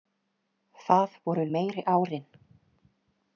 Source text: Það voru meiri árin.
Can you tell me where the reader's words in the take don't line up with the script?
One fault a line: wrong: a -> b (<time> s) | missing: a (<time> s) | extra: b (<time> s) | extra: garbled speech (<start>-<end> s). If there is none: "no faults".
no faults